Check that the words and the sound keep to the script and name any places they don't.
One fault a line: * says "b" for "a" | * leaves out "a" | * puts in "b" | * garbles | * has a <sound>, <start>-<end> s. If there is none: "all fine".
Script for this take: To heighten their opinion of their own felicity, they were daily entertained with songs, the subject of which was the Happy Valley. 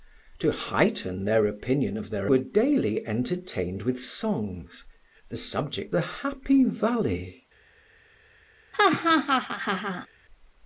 * leaves out "own felicity they"
* leaves out "of which was"
* has a laugh, 8.7-10.1 s